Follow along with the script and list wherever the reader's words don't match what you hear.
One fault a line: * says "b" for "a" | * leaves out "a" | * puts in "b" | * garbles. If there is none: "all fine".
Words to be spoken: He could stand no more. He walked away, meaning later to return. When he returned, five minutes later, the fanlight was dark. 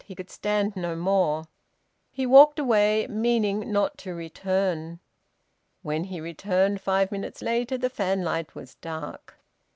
* says "not" for "later"